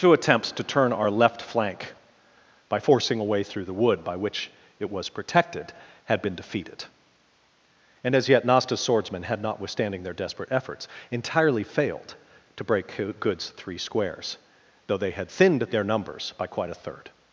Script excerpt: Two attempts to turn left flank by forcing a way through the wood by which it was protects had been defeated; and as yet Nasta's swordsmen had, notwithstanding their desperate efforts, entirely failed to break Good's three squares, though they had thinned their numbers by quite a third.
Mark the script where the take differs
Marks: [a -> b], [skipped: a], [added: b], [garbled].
Two attempts to turn [added: our] left flank by forcing a way through the wood by which it was [protects -> protected] had been defeated; and as yet Nasta's swordsmen had, notwithstanding their desperate efforts, entirely failed to break Good's three squares, though they had thinned their numbers by quite a third.